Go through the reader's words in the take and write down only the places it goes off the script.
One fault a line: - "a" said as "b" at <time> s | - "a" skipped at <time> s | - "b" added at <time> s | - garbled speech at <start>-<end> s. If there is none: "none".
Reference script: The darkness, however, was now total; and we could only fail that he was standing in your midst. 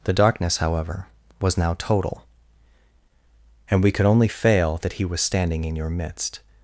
none